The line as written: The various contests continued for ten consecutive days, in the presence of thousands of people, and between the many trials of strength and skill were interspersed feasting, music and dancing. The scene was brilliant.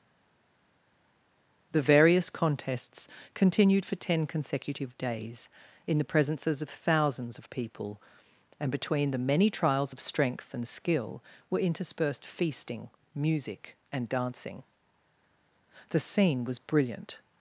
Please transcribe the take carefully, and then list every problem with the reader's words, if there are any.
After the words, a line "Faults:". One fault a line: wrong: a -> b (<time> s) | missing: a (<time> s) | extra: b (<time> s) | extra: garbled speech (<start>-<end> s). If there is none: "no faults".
The various contests continued for ten consecutive days, in the presences of thousands of people, and between the many trials of strength and skill were interspersed feasting, music and dancing. The scene was brilliant.
Faults:
wrong: presence -> presences (6.0 s)